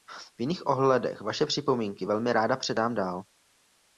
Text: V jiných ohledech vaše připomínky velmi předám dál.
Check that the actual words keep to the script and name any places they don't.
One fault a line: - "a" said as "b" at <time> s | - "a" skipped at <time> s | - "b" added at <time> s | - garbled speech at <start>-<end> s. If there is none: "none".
- "ráda" added at 2.3 s